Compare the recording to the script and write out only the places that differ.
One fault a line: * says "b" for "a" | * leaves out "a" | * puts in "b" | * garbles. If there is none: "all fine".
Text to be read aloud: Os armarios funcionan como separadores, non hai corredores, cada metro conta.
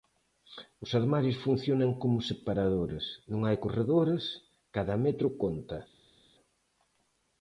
all fine